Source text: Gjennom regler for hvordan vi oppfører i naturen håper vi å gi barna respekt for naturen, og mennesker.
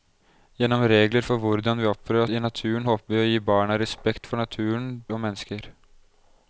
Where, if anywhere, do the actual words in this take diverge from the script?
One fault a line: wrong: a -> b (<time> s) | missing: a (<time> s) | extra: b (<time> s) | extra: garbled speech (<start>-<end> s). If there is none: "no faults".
no faults